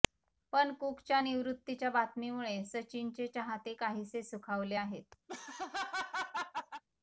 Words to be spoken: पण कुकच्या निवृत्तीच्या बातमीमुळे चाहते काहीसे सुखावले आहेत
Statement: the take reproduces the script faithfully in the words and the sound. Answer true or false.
false